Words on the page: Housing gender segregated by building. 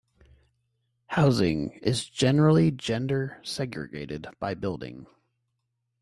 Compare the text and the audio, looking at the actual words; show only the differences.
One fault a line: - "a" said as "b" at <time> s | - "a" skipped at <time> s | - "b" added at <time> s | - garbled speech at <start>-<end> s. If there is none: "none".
- "is generally" added at 1.7 s